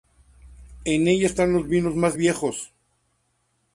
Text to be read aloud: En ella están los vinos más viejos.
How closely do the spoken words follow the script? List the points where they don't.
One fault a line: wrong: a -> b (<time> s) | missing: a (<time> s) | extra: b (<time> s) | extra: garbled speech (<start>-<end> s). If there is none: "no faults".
no faults